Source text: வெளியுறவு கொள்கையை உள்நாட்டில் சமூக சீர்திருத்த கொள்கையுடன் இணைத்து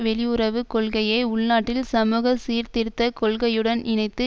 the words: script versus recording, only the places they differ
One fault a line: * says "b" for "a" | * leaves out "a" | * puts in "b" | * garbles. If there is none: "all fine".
all fine